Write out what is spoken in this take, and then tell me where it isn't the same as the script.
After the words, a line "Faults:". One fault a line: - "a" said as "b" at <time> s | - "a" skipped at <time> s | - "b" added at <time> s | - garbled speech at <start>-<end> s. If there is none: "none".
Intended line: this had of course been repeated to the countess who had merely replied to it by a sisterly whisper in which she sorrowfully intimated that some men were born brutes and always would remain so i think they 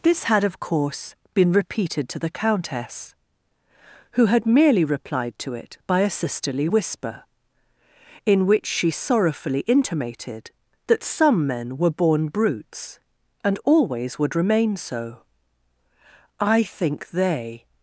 this had of course been repeated to the countess who had merely replied to it by a sisterly whisper in which she sorrowfully intimated that some men were born brutes and always would remain so i think they
Faults:
none